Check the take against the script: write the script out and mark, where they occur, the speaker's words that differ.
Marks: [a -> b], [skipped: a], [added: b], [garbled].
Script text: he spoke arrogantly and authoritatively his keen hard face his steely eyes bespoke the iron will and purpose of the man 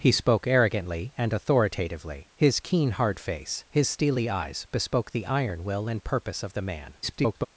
he spoke arrogantly and authoritatively his keen hard face his steely eyes bespoke the iron will and purpose of the man [garbled]